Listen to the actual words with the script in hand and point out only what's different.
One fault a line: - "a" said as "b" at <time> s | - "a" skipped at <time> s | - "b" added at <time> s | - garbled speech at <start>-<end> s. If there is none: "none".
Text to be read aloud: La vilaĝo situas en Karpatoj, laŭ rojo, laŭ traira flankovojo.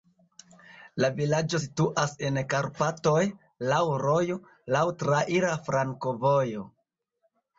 none